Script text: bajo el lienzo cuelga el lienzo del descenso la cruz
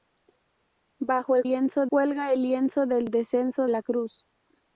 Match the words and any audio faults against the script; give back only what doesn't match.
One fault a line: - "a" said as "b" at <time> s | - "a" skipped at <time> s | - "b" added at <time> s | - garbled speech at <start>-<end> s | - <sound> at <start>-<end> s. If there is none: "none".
none